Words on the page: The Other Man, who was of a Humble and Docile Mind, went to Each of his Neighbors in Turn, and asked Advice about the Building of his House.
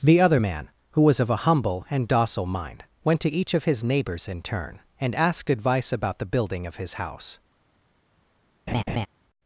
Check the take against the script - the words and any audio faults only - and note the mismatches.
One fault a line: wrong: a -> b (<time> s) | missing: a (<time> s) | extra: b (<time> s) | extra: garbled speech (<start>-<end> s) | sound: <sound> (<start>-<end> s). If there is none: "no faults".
sound: laugh (8.7-9.1 s)